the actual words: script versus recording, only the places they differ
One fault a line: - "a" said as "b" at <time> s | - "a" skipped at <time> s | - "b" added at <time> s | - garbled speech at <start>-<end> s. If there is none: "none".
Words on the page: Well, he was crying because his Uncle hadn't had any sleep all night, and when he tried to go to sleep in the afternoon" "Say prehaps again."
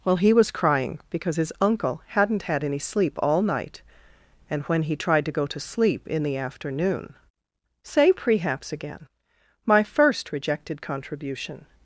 - "My first rejected contribution" added at 9.6 s